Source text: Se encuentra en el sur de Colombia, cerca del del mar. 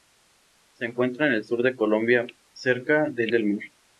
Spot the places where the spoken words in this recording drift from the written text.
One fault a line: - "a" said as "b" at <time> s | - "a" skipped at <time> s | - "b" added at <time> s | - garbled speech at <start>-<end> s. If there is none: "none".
none